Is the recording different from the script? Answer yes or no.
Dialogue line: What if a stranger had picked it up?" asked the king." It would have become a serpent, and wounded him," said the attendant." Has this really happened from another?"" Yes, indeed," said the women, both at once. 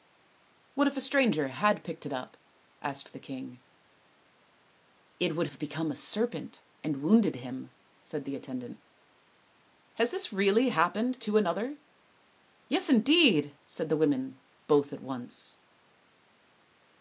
yes